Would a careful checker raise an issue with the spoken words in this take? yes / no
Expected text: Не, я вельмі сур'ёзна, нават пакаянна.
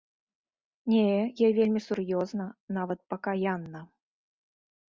no